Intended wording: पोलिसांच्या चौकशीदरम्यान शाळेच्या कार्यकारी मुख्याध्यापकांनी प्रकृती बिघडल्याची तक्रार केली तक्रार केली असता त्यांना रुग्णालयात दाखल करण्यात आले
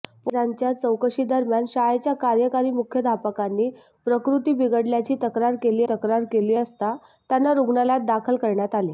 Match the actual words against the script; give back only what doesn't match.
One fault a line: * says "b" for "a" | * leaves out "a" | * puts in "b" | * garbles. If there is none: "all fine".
all fine